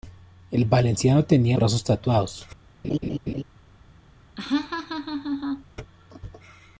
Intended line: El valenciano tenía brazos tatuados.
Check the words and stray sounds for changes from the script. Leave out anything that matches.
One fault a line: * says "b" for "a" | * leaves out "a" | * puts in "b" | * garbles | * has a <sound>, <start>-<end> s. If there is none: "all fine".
* has a laugh, 2.8-3.4 s
* has a laugh, 4.4-5.6 s